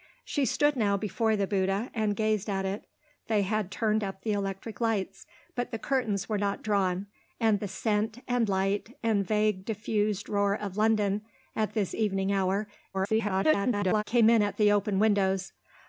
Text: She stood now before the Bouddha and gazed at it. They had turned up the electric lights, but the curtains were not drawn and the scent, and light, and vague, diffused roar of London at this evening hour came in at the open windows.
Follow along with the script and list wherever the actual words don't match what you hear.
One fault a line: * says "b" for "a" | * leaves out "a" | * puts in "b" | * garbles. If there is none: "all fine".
* garbles